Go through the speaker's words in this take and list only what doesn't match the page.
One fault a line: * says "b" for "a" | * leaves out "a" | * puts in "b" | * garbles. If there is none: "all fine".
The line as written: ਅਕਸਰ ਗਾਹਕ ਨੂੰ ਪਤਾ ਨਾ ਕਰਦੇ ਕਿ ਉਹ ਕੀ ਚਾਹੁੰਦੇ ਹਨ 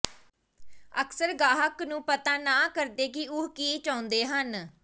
all fine